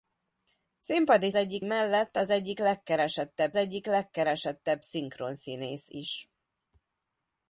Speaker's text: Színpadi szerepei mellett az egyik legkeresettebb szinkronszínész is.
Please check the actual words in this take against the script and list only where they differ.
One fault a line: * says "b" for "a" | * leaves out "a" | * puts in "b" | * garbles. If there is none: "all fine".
* says "egyik" for "szerepei"
* puts in "egyik legkeresettebb"